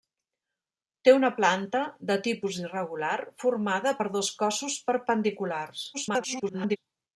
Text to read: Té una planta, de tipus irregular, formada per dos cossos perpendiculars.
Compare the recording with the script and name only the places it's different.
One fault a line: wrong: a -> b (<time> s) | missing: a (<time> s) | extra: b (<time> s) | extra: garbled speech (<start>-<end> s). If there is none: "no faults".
extra: garbled speech (5.9-6.8 s)